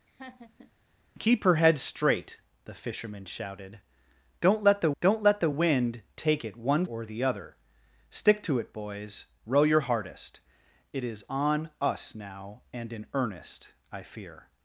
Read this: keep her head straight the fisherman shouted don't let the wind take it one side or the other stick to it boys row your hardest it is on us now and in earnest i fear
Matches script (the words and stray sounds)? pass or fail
fail